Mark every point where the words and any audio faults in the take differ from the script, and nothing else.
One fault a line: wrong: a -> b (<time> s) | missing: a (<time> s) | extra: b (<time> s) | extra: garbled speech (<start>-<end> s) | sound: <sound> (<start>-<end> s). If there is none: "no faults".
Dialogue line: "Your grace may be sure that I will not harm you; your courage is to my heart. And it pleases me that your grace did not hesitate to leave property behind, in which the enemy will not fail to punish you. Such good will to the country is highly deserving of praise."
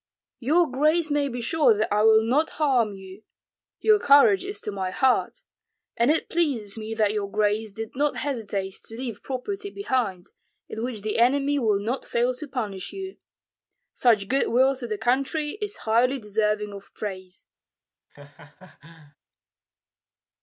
sound: laugh (18.1-19.2 s)